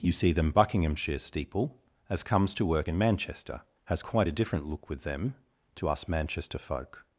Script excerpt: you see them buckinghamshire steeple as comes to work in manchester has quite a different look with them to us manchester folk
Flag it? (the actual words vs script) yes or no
no